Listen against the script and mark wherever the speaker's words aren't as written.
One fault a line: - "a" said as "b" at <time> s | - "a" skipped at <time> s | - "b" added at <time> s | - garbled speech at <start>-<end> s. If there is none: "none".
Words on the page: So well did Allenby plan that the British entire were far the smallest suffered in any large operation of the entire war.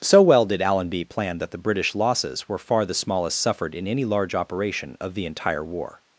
- "entire" said as "losses" at 1.9 s